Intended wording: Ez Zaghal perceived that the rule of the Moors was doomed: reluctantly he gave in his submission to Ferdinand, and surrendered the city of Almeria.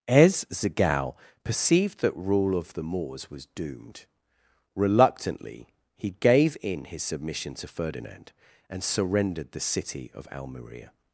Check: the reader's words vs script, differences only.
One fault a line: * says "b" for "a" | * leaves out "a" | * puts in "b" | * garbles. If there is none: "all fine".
* leaves out "the"